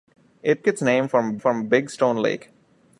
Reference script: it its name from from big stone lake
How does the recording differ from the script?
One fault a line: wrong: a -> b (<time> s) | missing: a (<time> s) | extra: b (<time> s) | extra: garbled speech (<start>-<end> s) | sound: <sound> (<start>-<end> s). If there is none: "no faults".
no faults